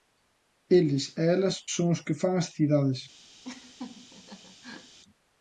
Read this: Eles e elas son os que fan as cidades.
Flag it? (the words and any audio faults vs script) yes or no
yes